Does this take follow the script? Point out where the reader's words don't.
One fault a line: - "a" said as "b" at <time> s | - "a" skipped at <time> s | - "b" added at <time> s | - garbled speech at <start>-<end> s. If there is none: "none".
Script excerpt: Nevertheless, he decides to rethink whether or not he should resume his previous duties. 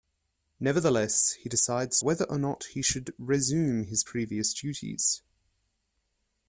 - "to rethink" skipped at 2.0 s